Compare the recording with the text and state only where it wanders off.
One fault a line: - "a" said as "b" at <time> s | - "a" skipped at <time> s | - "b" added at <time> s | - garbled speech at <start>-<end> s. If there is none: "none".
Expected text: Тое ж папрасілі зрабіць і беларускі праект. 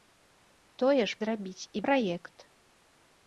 - "папрасілі" skipped at 1.2 s
- "беларускі" skipped at 1.8 s